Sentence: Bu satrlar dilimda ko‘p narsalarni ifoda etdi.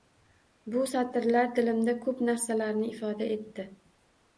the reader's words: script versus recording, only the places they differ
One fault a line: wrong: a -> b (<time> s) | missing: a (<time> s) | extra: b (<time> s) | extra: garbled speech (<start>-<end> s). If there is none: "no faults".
no faults